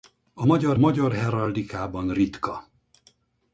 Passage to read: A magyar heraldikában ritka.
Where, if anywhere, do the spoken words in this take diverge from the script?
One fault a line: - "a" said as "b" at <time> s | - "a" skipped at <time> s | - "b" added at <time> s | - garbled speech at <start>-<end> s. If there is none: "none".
- "magyar" added at 0.8 s